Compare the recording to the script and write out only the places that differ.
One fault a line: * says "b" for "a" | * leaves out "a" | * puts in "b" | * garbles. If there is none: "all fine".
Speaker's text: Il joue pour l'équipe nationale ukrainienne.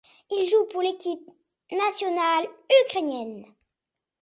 all fine